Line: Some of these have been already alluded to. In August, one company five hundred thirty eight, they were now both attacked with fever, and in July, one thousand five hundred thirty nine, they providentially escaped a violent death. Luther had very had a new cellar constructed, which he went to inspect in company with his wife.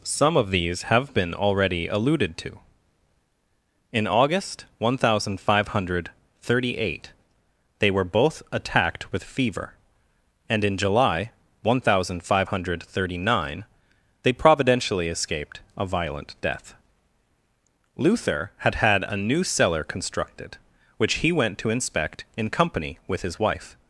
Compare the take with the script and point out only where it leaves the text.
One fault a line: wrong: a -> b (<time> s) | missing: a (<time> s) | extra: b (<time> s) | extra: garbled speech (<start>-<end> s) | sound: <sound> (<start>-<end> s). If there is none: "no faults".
wrong: company -> thousand (5.0 s)
missing: now (8.1 s)
missing: very (18.8 s)